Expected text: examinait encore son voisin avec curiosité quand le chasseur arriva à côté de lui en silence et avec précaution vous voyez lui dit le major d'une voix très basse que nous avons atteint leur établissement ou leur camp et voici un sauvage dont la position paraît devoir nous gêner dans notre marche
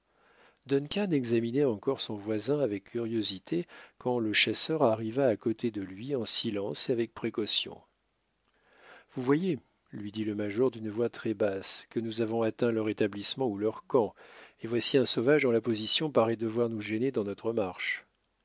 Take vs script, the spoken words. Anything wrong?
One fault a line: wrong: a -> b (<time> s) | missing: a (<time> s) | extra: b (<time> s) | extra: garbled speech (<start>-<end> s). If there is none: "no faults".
no faults